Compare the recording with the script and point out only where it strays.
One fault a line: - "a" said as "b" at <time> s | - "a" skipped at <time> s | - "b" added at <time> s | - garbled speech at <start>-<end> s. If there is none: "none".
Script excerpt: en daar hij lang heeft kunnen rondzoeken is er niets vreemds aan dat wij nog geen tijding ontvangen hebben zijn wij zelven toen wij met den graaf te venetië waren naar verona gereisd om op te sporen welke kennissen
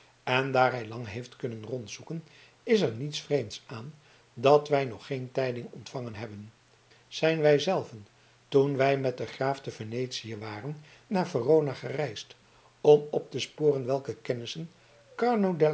none